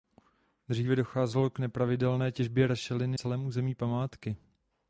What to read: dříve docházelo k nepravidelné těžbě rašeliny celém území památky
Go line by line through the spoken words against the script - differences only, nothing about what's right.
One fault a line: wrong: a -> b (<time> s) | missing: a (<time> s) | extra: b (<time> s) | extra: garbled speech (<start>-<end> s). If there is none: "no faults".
no faults